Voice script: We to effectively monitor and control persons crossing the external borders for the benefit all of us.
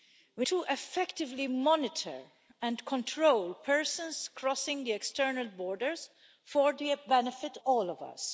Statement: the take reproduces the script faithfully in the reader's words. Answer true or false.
true